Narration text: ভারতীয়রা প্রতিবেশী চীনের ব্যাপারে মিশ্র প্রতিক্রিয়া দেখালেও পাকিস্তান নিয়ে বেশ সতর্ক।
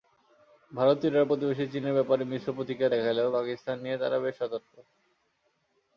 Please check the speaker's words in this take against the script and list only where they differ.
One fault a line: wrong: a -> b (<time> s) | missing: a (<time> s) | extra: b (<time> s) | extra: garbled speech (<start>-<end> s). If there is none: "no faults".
extra: তারা (4.0 s)